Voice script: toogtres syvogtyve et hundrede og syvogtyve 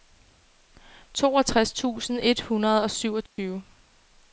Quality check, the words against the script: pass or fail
fail